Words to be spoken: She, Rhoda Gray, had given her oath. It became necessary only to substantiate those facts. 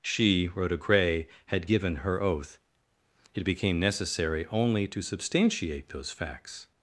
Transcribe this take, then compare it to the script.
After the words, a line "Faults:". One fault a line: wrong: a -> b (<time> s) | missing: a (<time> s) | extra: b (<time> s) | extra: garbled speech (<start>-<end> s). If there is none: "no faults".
She, Rhoda Gray, had given her oath. It became necessary only to substantiate those facts.
Faults:
no faults